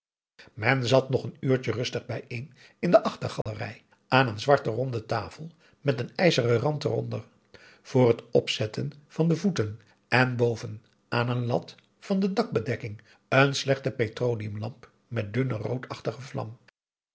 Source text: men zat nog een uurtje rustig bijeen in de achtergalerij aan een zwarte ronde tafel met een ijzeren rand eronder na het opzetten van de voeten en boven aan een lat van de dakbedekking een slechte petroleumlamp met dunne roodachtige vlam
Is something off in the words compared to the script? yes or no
yes